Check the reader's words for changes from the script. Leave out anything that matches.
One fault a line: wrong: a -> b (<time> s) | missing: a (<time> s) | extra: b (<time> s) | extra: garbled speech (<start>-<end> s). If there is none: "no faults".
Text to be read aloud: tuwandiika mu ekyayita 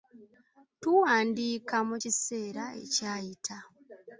extra: kiseera (2.0 s)